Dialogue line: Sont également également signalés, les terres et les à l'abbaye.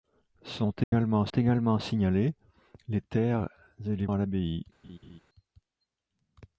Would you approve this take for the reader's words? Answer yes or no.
yes